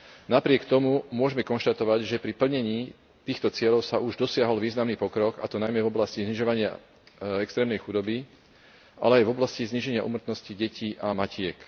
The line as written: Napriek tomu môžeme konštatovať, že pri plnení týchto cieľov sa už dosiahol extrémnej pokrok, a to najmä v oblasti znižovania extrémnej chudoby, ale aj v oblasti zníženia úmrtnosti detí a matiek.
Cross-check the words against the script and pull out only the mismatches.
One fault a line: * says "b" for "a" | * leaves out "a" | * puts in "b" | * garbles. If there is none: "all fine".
* says "významný" for "extrémnej"